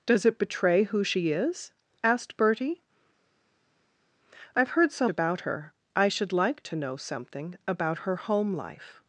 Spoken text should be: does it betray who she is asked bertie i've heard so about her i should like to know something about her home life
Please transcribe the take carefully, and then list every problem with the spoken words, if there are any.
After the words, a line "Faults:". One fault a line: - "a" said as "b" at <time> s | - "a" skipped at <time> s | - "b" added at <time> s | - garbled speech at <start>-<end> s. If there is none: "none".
does it betray who she is asked bertie i've heard so about her i should like to know something about her home life
Faults:
none